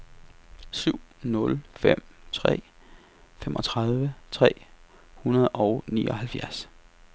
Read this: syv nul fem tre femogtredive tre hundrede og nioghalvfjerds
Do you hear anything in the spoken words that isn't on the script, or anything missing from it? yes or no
no